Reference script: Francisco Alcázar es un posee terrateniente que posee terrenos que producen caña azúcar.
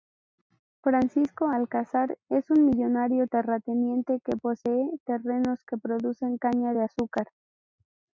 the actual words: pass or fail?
fail